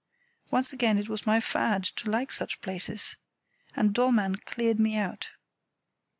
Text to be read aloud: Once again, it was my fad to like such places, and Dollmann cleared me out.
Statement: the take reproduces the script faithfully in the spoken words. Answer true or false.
true